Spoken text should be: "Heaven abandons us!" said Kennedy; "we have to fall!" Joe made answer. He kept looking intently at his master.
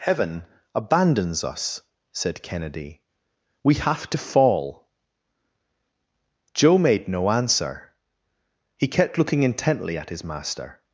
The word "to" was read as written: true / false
true